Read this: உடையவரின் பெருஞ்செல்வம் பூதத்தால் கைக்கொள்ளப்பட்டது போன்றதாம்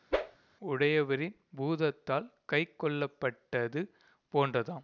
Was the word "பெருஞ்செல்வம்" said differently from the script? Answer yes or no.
yes